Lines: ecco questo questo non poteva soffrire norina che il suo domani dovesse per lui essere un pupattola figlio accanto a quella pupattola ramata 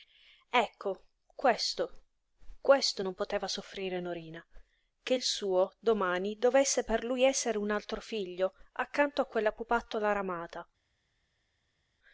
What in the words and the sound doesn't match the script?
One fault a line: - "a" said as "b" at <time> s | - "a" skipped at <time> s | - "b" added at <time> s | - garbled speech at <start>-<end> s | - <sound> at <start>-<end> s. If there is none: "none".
- "pupattola" said as "altro" at 7.7 s